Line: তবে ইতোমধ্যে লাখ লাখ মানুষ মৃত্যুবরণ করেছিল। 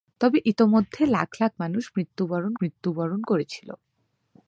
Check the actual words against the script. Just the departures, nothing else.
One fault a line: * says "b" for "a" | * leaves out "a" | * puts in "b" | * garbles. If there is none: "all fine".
* puts in "মৃত্যুবরণ"